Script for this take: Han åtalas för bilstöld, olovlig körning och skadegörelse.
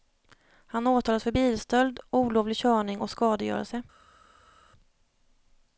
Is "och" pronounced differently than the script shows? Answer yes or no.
no